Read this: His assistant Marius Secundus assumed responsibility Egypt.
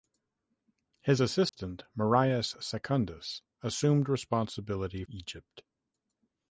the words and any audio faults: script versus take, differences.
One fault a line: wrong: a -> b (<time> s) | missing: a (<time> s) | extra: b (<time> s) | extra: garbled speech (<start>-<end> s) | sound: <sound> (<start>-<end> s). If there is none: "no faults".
sound: dropout (1.5-1.5 s)